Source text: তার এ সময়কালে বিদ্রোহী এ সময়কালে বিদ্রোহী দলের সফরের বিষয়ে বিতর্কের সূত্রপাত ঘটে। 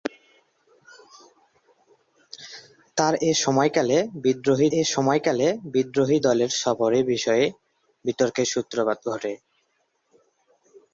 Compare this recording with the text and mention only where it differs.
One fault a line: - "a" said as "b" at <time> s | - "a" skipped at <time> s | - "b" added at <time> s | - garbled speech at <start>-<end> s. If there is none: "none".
none